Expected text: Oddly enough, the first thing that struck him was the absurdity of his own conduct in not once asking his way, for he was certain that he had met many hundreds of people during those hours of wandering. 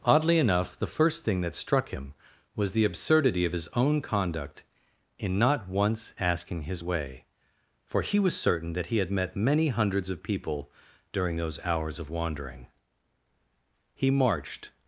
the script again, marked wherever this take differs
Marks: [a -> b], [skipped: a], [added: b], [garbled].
Oddly enough, the first thing that struck him was the absurdity of his own conduct in not once asking his way, for he was certain that he had met many hundreds of people during those hours of wandering. [added: He marched]